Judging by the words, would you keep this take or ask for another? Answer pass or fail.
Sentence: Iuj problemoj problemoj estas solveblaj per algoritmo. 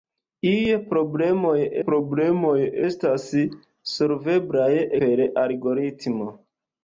pass